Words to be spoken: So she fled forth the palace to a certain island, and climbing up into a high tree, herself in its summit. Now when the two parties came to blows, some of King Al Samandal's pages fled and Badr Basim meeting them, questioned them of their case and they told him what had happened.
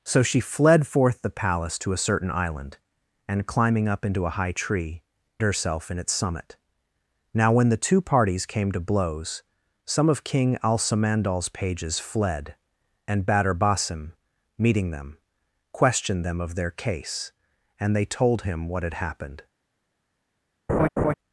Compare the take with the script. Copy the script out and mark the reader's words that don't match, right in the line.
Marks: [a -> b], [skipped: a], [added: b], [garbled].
So she fled forth the palace to a certain island, and climbing up into a high tree, herself in its summit. Now when the two parties came to blows, some of King Al Samandal's pages fled and Badr Basim meeting them, questioned them of their case and they told him what had happened.